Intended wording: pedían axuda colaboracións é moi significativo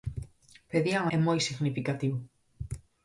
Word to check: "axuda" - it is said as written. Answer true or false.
false